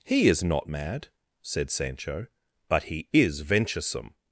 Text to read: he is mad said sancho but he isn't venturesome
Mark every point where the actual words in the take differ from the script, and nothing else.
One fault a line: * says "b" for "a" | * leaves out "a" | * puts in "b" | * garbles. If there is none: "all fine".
* puts in "not"
* says "is" for "isn't"